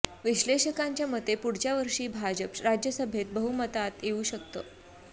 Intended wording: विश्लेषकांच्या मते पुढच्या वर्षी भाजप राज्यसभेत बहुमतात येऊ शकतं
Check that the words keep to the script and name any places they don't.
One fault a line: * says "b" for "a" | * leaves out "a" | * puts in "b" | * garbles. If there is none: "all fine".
all fine